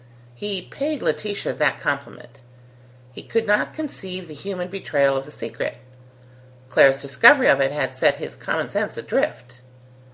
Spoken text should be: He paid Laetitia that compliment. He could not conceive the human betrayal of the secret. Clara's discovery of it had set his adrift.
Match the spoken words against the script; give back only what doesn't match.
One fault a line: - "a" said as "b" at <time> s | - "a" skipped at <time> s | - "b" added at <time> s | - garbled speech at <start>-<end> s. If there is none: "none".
- "common sense" added at 8.3 s